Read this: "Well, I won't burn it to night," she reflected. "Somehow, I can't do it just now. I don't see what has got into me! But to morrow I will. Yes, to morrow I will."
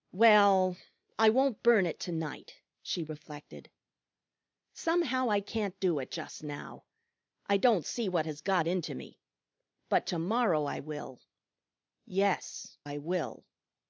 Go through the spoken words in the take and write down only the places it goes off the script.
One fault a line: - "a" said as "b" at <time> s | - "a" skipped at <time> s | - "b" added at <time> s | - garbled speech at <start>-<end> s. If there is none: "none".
- "to morrow" skipped at 12.8 s